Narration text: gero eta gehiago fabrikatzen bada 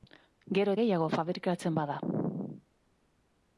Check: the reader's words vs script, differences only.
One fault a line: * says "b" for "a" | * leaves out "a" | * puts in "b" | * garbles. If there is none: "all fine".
* leaves out "eta"